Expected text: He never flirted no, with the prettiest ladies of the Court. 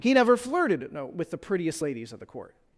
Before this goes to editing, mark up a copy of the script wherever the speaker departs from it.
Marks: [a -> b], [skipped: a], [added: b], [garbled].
He never flirted no, with the prettiest ladies of the Court.